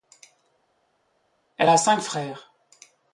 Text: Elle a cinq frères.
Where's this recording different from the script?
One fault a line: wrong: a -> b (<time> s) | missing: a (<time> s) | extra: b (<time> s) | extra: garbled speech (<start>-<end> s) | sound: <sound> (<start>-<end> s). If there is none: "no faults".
no faults